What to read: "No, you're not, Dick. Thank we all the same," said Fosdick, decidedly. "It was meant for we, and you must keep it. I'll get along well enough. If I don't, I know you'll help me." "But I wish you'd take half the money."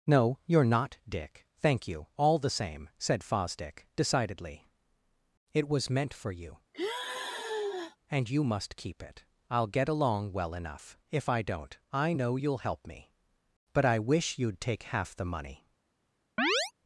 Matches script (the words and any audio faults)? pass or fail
fail